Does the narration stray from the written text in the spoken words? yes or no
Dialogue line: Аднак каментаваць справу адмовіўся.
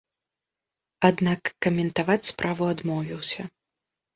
no